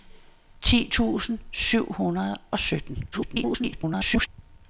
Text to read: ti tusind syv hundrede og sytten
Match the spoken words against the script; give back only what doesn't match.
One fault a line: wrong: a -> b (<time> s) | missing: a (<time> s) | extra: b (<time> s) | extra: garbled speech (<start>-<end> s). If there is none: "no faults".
extra: garbled speech (3.1-4.3 s)